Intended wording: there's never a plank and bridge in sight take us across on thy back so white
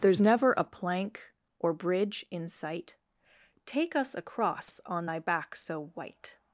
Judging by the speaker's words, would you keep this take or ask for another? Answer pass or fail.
fail